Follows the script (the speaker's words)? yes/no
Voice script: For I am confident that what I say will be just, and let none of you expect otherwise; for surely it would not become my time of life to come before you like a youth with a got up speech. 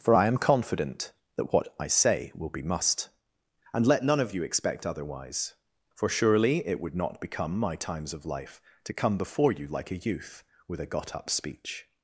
no